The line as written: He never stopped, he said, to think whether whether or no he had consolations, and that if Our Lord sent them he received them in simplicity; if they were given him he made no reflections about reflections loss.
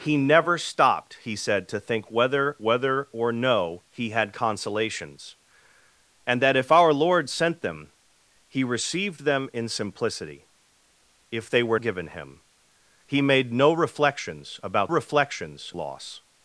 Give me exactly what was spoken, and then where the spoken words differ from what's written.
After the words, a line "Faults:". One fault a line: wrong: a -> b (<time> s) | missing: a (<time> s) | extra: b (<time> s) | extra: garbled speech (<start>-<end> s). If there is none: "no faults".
He never stopped, he said, to think whether whether or no he had consolations, and that if Our Lord sent them he received them in simplicity; if they were given him he made no reflections about reflections loss.
Faults:
no faults